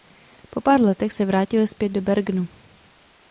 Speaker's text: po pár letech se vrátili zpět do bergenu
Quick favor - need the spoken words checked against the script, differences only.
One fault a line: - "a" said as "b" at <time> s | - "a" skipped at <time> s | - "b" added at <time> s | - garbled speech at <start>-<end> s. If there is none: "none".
none